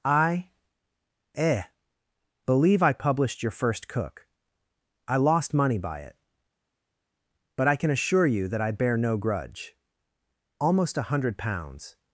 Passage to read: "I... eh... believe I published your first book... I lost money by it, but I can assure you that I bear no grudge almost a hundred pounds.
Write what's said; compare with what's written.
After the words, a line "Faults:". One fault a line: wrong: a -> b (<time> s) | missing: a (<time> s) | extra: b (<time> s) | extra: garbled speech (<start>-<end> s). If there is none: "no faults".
"I... eh... believe I published your first cook... I lost money by it, but I can assure you that I bear no grudge almost a hundred pounds.
Faults:
wrong: book -> cook (3.9 s)